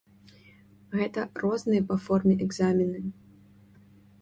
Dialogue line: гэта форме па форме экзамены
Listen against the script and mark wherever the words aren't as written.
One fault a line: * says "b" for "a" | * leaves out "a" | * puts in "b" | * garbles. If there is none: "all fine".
* says "розныя" for "форме"